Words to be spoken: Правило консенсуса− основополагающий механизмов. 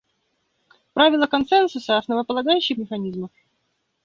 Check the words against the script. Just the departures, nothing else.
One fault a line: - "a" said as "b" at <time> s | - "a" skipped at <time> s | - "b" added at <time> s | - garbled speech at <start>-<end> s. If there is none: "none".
none